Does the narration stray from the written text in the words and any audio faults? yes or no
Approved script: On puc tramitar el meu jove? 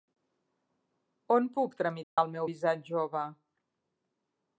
yes